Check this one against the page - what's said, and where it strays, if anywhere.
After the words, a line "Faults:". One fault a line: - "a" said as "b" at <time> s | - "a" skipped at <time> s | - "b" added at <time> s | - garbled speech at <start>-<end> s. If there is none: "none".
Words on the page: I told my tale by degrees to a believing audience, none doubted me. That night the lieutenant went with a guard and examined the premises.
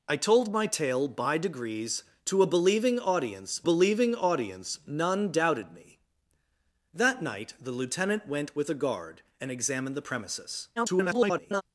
I told my tale by degrees to a believing audience believing audience, none doubted me. That night the lieutenant went with a guard and examined the premises. [garbled]
Faults:
- "believing audience" added at 3.6 s
- garbled speech at 10.8-11.6 s